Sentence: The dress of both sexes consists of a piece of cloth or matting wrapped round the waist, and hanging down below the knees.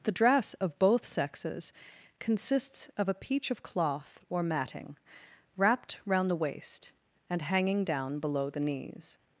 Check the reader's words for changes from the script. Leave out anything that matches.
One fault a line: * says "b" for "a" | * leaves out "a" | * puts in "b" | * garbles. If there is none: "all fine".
* says "peach" for "piece"